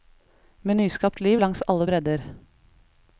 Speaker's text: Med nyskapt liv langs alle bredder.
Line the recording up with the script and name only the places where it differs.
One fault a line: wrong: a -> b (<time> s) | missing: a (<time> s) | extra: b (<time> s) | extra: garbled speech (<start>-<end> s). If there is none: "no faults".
no faults